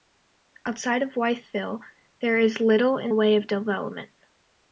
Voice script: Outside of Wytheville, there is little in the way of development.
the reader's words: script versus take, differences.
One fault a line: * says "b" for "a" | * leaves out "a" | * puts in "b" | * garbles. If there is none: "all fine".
* leaves out "the"